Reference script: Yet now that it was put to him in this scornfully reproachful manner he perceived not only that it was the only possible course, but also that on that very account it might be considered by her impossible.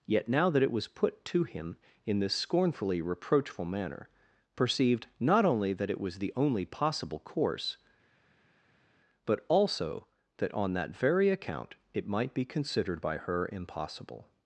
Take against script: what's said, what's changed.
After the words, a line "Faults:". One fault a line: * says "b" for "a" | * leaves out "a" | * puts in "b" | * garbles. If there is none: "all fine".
Yet now that it was put to him in this scornfully reproachful manner perceived not only that it was the only possible course, but also that on that very account it might be considered by her impossible.
Faults:
* leaves out "he"